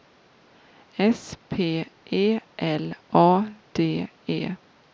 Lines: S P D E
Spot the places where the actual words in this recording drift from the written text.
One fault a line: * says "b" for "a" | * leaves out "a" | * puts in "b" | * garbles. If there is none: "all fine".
* puts in "E L A"